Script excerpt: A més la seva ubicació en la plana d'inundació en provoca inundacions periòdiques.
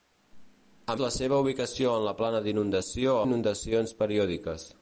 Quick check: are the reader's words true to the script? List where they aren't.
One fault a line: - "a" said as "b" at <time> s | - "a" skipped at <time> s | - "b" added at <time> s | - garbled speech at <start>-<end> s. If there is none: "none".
- "més" skipped at 0.9 s
- "en provoca" skipped at 3.2 s